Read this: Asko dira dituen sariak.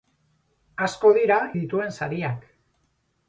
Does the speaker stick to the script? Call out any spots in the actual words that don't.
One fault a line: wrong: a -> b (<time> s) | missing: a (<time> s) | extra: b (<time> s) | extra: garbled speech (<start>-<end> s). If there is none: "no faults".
no faults